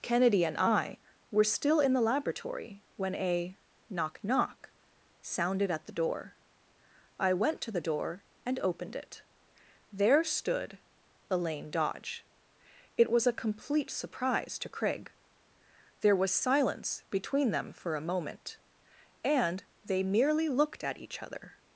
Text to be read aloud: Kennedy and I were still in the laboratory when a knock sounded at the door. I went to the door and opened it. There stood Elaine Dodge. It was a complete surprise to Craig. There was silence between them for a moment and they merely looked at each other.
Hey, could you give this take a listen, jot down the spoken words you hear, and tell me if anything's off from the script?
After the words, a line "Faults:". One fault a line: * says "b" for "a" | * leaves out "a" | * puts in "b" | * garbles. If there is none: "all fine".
Kennedy and I were still in the laboratory when a knock knock sounded at the door. I went to the door and opened it. There stood Elaine Dodge. It was a complete surprise to Craig. There was silence between them for a moment and they merely looked at each other.
Faults:
* puts in "knock"